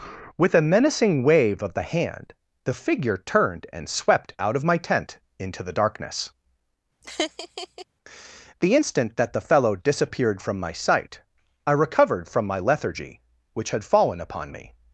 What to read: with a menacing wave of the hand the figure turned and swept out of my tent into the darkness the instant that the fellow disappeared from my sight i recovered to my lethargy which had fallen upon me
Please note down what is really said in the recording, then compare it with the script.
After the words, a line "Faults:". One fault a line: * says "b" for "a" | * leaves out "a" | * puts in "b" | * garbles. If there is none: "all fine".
with a menacing wave of the hand the figure turned and swept out of my tent into the darkness the instant that the fellow disappeared from my sight i recovered from my lethargy which had fallen upon me
Faults:
* says "from" for "to"